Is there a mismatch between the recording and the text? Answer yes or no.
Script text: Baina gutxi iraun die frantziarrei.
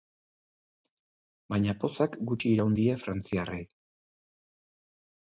yes